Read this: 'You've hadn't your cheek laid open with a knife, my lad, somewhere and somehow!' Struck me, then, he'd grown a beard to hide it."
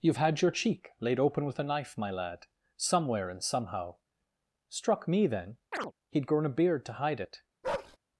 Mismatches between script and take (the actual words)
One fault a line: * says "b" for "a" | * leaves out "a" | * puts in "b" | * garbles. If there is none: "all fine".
* says "had" for "hadn't"